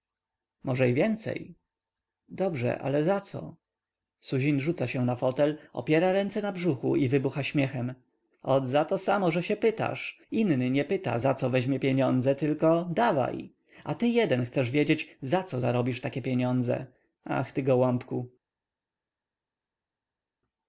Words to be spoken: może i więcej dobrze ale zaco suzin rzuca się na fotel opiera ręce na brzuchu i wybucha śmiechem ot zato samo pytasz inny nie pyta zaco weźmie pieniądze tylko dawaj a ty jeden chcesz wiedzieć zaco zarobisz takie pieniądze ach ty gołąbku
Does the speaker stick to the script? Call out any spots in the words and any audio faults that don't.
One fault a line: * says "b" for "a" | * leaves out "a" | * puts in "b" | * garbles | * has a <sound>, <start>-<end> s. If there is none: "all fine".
* puts in "że się"